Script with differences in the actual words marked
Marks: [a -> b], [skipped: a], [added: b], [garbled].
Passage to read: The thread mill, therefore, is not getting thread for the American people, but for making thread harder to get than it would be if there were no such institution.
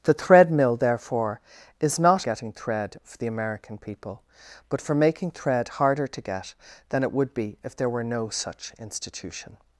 The thread mill, therefore, is not getting thread for the American people, but for making thread harder to get than it would be if there were no such institution.